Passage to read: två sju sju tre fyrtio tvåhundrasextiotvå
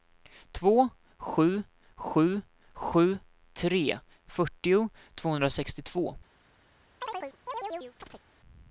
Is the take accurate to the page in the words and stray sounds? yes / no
no